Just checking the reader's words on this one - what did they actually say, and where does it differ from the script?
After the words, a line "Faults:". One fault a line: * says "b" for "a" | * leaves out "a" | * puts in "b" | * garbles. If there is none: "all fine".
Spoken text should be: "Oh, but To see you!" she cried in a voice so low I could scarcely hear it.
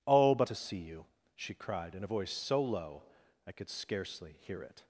"Oh, but To see you!" she cried in a voice so low I could scarcely hear it.
Faults:
all fine